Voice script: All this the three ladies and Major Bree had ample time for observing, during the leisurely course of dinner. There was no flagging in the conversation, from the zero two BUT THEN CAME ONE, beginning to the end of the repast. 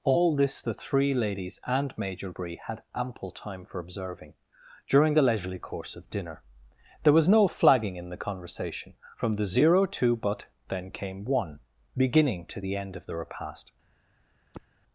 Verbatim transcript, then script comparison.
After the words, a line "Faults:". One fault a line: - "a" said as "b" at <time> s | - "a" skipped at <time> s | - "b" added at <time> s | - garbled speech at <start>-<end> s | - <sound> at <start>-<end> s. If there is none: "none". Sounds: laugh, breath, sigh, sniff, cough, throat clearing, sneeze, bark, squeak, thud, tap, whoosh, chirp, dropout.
All this the three ladies and Major Bree had ample time for observing, during the leisurely course of dinner. There was no flagging in the conversation, from the zero two BUT THEN CAME ONE, beginning to the end of the repast.
Faults:
- sigh at 14.5-14.7 s